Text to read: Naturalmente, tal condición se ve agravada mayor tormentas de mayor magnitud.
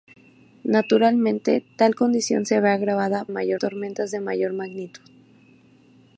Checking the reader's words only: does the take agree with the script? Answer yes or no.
yes